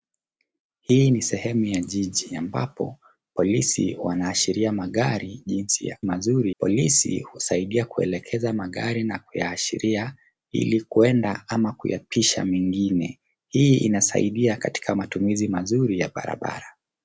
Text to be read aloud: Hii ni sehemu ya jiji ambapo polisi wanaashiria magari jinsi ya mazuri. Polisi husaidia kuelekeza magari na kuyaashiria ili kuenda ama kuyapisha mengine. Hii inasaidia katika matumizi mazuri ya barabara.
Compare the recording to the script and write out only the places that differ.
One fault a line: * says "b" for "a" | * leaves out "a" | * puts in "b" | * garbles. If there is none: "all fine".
all fine